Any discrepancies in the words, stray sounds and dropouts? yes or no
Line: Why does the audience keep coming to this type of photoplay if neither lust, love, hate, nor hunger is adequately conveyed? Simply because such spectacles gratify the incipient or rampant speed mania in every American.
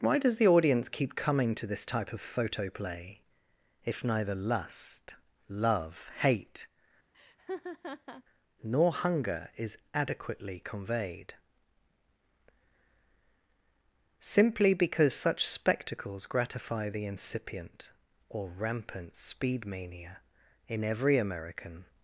yes